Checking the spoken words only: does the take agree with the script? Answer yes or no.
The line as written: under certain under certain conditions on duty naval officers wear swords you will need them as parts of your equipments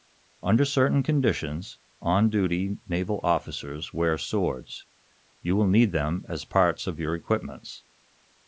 no